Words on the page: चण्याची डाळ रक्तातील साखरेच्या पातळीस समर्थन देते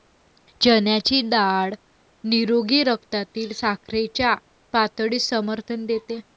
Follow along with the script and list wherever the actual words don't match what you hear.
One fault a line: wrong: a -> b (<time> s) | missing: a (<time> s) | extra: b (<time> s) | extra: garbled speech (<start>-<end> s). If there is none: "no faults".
extra: निरोगी (2.2 s)